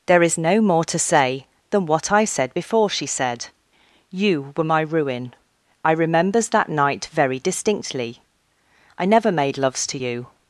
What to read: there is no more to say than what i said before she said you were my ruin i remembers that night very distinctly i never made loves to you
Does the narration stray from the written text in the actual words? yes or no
no